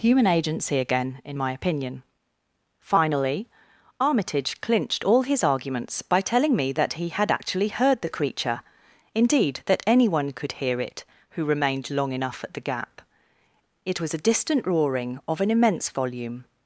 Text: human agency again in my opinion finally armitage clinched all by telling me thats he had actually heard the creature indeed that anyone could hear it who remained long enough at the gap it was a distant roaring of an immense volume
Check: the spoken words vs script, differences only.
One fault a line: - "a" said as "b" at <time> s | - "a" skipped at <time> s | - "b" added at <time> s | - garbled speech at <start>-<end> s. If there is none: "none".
- "his arguments" added at 5.2 s
- "thats" said as "that" at 6.7 s